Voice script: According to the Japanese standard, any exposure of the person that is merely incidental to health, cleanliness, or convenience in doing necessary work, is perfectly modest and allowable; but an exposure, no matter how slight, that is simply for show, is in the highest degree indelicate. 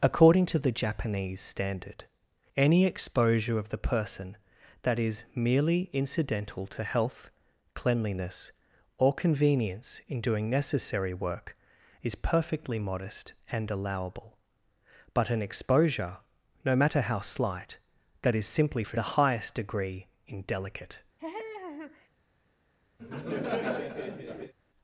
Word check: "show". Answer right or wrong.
wrong